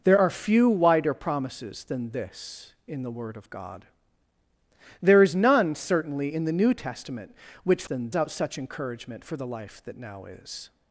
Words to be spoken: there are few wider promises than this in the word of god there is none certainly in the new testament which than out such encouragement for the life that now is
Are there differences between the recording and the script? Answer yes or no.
no